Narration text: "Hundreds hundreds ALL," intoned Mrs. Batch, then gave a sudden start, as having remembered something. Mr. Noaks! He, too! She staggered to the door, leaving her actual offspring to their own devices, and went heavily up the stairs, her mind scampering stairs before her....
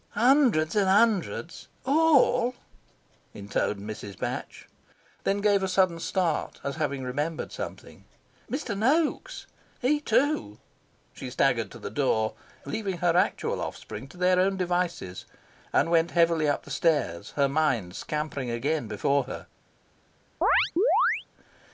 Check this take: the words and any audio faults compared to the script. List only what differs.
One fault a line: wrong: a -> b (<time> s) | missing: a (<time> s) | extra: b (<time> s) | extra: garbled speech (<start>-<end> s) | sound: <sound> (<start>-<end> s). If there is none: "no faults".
extra: and (0.8 s)
wrong: stairs -> again (18.5 s)
sound: chirp (20.4-21.3 s)